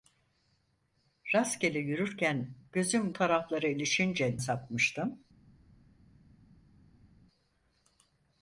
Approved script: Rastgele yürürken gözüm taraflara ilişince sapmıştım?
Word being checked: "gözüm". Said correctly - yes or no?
yes